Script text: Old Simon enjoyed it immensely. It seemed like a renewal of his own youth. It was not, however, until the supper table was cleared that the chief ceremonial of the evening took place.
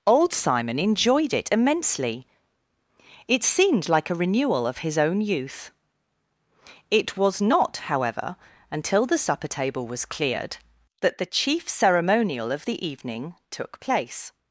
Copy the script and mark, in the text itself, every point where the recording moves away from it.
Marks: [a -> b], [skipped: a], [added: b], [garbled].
Old Simon enjoyed it immensely. It seemed like a renewal of his own youth. It was not, however, until the supper table was cleared that the chief ceremonial of the evening took place.